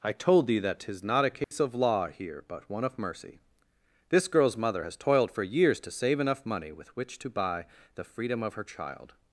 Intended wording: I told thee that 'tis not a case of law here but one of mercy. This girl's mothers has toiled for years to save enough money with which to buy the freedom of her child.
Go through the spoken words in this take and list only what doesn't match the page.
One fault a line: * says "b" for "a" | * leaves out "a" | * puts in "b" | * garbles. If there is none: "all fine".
* says "mother" for "mothers"